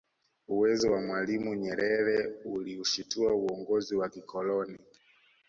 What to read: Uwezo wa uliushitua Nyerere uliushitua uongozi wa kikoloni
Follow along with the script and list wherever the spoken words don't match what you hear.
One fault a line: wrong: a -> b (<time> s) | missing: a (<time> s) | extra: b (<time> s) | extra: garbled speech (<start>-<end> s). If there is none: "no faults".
wrong: uliushitua -> mwalimu (1.0 s)